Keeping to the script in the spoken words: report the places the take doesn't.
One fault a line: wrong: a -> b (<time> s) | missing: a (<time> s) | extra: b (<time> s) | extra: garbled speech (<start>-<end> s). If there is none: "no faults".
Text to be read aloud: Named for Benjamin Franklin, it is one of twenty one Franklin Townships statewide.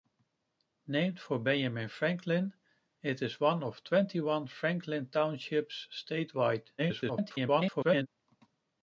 extra: garbled speech (6.8-8.1 s)